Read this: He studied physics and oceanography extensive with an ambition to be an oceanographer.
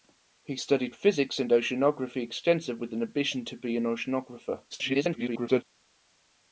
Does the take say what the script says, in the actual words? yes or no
no